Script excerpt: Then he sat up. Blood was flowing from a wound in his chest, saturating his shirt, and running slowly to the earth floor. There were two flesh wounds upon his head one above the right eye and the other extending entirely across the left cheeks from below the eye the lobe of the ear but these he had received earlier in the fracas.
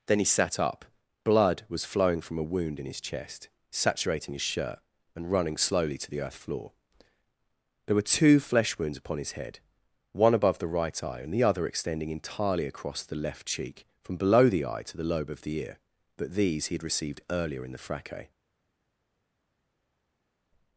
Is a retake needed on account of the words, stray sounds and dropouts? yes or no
yes